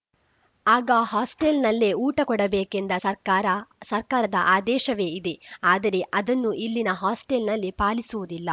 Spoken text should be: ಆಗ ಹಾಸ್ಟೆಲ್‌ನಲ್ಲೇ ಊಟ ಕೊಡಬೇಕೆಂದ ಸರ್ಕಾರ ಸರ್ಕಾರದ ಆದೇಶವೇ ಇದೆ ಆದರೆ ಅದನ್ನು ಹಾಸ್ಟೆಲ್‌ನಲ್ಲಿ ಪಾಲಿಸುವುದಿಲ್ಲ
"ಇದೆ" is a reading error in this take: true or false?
false